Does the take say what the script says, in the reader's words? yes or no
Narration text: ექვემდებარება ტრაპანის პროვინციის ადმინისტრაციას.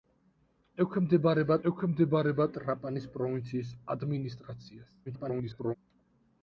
no